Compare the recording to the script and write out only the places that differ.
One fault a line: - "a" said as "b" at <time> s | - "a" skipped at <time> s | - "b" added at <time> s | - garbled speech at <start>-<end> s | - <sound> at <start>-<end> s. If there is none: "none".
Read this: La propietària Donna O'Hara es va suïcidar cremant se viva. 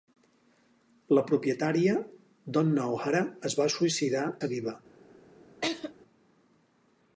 - "cremant" skipped at 4.3 s
- laugh at 5.6-5.9 s